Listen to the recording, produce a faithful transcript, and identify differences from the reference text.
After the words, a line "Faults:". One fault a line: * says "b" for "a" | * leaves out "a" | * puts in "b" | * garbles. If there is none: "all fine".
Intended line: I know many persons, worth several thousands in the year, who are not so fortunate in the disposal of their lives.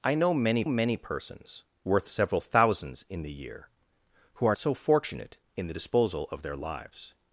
I know many many persons, worth several thousands in the year, who are so fortunate in the disposal of their lives.
Faults:
* puts in "many"
* leaves out "not"